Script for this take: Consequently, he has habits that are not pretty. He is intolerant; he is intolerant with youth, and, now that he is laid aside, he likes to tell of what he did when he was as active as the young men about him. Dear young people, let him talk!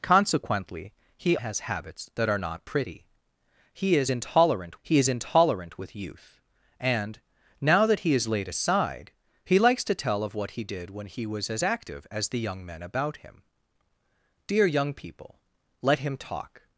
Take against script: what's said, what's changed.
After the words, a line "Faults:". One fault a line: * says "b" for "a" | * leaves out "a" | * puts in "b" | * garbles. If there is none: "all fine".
Consequently, he has habits that are not pretty. He is intolerant; he is intolerant with youth, and, now that he is laid aside, he likes to tell of what he did when he was as active as the young men about him. Dear young people, let him talk!
Faults:
all fine